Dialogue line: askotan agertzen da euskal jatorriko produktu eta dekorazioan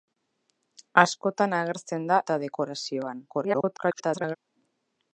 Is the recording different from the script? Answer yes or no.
yes